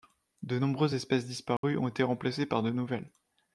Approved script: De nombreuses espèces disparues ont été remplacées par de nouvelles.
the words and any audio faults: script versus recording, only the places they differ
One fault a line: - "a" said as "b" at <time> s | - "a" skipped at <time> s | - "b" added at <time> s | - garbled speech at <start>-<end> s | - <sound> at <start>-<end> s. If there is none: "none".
- dropout at 1.6-1.6 s